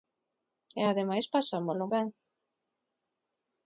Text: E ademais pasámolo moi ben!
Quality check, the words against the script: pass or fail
fail